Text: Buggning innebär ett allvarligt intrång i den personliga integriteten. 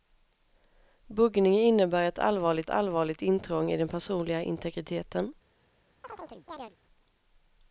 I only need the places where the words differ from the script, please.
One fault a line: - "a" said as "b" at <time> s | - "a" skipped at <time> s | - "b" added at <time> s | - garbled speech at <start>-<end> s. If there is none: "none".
- "allvarligt" added at 2.7 s